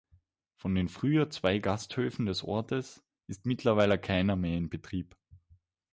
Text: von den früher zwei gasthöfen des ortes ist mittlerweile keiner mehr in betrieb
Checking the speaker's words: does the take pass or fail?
pass